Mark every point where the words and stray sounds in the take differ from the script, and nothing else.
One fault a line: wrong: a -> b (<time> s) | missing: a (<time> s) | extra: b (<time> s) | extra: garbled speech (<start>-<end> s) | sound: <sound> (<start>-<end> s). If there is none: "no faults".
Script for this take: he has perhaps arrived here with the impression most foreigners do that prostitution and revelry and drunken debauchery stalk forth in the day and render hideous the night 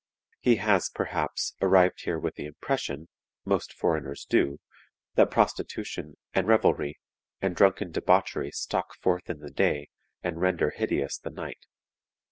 no faults